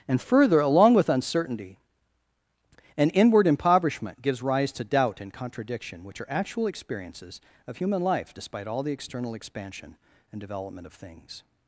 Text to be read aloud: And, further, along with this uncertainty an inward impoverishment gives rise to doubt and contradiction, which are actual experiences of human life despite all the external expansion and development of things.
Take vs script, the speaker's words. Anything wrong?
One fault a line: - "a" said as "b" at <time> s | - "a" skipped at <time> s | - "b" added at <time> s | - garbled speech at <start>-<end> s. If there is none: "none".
- "this" skipped at 1.1 s